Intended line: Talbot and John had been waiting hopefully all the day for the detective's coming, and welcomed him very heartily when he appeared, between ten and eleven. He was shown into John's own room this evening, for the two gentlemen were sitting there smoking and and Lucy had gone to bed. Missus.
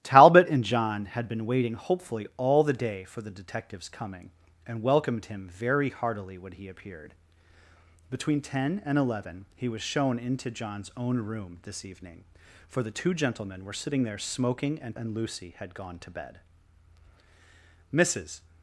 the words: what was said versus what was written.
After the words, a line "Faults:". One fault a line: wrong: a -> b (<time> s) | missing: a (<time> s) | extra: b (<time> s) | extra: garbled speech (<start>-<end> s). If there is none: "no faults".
Talbot and John had been waiting hopefully all the day for the detective's coming, and welcomed him very heartily when he appeared, between ten and eleven. He was shown into John's own room this evening, for the two gentlemen were sitting there smoking and and Lucy had gone to bed. Missus.
Faults:
no faults